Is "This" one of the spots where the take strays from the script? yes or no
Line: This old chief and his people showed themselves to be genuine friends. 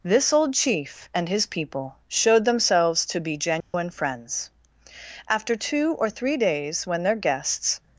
no